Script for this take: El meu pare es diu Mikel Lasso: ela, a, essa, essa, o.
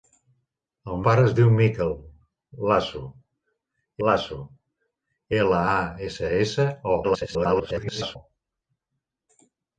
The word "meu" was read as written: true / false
false